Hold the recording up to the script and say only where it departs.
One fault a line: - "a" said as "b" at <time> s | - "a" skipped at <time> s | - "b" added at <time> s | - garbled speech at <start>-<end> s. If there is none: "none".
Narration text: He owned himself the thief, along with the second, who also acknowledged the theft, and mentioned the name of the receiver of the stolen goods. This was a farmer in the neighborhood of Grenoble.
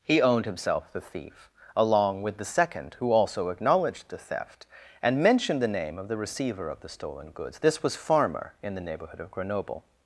- "a" skipped at 8.0 s